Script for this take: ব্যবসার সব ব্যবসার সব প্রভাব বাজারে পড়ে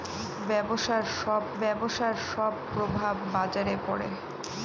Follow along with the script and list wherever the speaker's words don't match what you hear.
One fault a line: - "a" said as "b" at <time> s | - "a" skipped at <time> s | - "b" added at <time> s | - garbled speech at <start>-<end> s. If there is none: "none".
none